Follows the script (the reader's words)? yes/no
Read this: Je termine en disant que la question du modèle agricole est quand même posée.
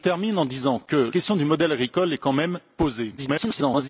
no